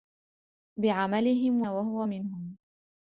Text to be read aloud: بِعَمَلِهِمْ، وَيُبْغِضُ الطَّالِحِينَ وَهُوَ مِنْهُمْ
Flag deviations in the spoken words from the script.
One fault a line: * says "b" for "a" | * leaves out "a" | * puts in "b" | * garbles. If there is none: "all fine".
* leaves out "وَيُبْغِضُ الطَّالِحِينَ"